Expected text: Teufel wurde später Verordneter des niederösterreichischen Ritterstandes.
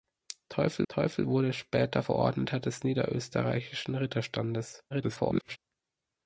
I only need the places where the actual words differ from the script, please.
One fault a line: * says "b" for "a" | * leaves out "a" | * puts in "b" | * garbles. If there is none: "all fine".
* puts in "teufel"
* garbles